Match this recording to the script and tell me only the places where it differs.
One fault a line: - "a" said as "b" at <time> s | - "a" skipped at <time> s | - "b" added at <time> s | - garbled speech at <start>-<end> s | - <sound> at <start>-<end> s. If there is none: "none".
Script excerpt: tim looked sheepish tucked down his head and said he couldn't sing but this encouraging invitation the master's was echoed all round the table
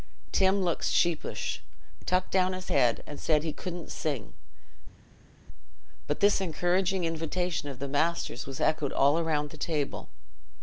- "of" added at 7.7 s